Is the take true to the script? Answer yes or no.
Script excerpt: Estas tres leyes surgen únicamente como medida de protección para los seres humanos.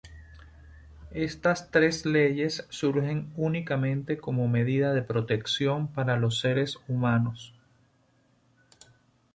yes